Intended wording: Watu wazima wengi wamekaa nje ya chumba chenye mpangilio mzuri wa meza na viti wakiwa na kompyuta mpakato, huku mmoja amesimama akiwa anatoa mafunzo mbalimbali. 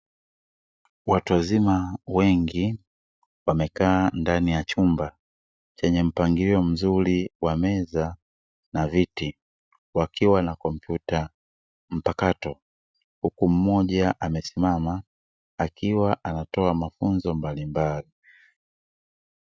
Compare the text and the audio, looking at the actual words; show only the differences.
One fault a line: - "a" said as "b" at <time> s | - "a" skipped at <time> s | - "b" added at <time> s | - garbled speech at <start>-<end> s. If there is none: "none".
- "nje" said as "ndani" at 4.1 s